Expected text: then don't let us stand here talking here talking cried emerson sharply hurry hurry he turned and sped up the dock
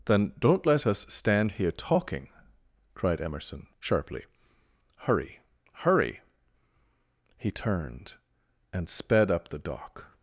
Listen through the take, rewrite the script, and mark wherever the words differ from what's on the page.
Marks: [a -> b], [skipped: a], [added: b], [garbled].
then don't let us stand here talking [skipped: here talking] cried emerson sharply hurry hurry he turned and sped up the dock